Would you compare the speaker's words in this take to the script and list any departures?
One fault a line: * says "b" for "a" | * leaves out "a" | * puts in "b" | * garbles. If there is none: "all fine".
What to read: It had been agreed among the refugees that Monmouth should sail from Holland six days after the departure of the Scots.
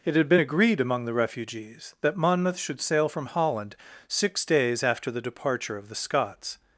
all fine